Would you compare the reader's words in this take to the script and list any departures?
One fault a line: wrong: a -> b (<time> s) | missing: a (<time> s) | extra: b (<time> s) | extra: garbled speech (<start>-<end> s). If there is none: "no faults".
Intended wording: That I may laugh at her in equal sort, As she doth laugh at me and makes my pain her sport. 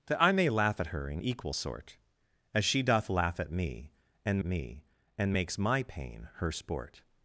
extra: me and (4.4 s)